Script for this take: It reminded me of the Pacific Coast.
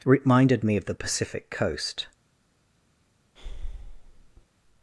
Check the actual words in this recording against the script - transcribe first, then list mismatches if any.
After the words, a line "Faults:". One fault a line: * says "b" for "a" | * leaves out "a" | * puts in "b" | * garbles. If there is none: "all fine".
reminded me of the Pacific Coast.
Faults:
* leaves out "It"